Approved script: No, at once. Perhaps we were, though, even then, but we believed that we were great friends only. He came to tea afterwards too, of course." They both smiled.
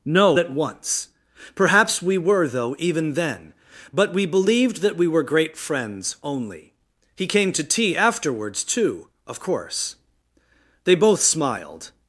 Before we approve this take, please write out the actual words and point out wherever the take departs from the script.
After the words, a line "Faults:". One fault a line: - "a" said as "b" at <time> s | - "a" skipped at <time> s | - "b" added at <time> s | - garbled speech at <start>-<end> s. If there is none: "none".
No, at once. Perhaps we were, though, even then, but we believed that we were great friends only. He came to tea afterwards too, of course." They both smiled.
Faults:
none